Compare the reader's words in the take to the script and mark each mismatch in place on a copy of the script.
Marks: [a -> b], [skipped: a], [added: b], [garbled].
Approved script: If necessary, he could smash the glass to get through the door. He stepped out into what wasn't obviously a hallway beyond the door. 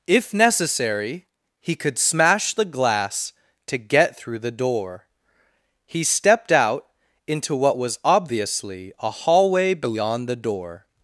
If necessary, he could smash the glass to get through the door. He stepped out into what [wasn't -> was] obviously a hallway beyond the door.